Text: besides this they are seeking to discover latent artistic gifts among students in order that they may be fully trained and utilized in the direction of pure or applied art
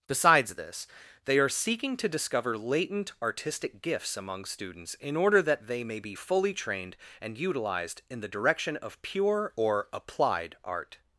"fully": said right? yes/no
yes